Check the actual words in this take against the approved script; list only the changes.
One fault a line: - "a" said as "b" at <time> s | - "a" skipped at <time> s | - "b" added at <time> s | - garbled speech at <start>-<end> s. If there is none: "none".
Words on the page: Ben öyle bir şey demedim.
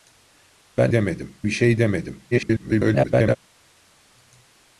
- "öyle" said as "demedim" at 0.9 s
- garbled speech at 2.3-3.4 s